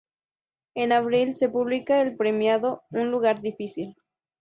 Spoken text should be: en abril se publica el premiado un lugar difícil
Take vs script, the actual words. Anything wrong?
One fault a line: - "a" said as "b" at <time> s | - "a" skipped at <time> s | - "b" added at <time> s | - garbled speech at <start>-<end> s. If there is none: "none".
none